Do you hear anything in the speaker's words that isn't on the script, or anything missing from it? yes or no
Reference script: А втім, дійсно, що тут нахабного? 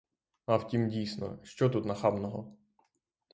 no